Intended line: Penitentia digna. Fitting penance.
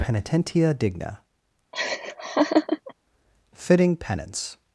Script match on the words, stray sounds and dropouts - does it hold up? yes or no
no